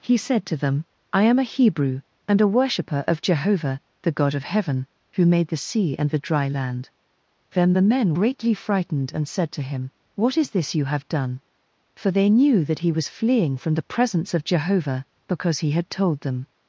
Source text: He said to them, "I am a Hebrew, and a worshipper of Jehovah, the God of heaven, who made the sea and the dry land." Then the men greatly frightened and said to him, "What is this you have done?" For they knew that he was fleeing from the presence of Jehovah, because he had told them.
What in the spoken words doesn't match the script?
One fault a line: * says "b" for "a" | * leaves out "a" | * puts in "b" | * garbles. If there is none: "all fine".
all fine